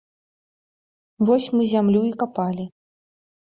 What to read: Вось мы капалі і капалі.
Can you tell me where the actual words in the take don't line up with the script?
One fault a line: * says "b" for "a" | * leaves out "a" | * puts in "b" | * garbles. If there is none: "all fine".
* says "зямлю" for "капалі"